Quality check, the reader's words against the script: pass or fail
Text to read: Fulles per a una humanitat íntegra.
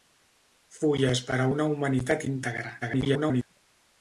fail